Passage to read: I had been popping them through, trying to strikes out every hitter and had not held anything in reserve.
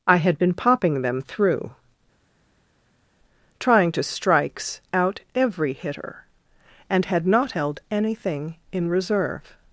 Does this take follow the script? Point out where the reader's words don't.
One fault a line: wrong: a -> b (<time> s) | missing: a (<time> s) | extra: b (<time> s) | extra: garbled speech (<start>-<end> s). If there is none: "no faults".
no faults